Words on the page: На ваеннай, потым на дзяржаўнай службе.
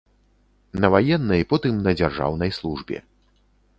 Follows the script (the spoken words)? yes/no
yes